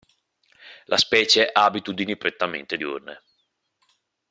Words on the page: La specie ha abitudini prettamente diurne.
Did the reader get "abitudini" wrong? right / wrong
right